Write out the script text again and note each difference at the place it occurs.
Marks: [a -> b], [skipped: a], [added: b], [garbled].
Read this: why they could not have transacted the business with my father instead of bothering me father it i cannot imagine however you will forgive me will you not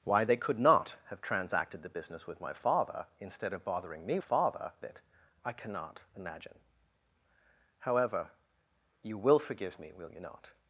why they could not have transacted the business with my father instead of bothering me father it i cannot imagine however you will forgive me will you not